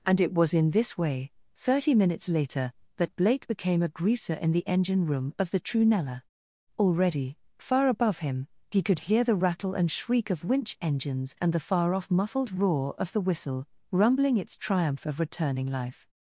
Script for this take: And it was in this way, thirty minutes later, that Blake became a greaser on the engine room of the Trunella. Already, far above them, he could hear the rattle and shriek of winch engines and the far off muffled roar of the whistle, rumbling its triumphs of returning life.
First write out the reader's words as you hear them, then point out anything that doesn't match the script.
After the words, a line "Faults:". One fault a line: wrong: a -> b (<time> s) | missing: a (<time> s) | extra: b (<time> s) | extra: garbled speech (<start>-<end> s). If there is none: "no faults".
And it was in this way, thirty minutes later, that Blake became a greaser in the engine room of the Trunella. Already, far above him, he could hear the rattle and shriek of winch engines and the far off muffled roar of the whistle, rumbling its triumph of returning life.
Faults:
wrong: on -> in (4.4 s)
wrong: them -> him (8.2 s)
wrong: triumphs -> triumph (14.6 s)